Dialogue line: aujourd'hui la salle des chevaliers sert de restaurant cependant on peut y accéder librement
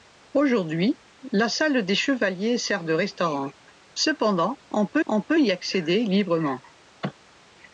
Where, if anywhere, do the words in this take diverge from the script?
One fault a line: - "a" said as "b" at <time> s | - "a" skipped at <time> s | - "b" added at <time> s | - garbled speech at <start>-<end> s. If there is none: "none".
- "on peut" added at 5.1 s